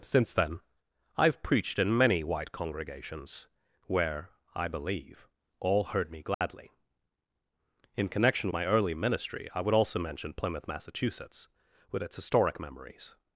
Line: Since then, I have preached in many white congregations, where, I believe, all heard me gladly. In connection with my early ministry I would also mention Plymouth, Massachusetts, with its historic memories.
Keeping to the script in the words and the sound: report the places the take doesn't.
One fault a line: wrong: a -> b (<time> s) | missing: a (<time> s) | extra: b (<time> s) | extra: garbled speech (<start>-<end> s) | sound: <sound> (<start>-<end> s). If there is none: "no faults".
sound: dropout (6.3-6.4 s)
missing: with (8.5 s)